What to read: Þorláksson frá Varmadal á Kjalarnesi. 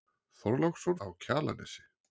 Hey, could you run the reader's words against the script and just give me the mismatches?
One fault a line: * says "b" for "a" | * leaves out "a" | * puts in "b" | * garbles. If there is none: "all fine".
* leaves out "frá Varmadal"